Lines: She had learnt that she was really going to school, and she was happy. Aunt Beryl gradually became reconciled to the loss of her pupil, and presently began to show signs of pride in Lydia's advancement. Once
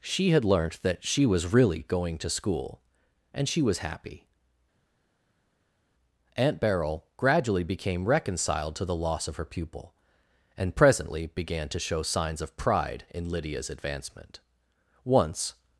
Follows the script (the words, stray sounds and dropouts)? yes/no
yes